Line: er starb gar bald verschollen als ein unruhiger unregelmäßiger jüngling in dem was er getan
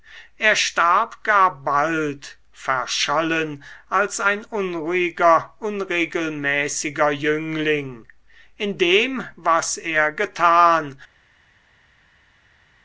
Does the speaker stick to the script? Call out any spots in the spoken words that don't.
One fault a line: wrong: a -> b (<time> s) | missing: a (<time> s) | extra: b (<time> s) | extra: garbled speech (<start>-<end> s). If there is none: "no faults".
no faults